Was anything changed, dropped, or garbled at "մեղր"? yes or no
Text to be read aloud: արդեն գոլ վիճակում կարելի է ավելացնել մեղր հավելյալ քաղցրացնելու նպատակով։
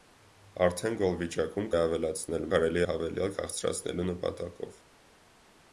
yes